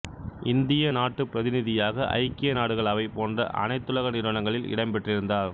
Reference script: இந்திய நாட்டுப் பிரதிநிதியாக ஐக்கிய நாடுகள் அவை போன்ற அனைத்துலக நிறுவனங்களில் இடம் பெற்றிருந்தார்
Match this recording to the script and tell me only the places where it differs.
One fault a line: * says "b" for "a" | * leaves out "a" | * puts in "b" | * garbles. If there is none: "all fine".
all fine